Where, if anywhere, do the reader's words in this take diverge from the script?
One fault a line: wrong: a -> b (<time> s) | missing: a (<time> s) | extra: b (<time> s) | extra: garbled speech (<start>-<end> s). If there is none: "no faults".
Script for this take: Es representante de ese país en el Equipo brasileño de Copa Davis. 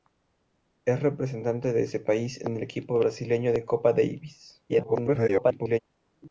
extra: garbled speech (4.7-5.8 s)